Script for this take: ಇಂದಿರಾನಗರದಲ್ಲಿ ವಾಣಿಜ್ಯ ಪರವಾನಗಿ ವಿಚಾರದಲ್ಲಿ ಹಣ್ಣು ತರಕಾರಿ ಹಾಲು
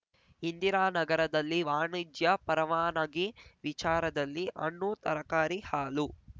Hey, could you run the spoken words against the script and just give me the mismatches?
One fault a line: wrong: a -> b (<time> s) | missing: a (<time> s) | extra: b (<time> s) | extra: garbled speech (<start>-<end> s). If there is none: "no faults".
no faults